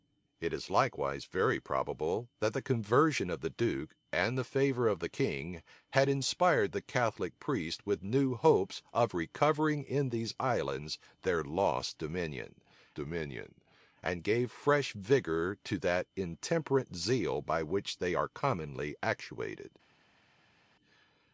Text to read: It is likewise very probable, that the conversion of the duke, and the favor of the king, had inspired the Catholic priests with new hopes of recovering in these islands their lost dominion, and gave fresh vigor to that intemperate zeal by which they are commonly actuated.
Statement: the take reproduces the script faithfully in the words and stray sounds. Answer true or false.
false